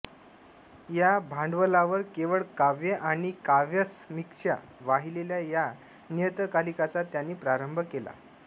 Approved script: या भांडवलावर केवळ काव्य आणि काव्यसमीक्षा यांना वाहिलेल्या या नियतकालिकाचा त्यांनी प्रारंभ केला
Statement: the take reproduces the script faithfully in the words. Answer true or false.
false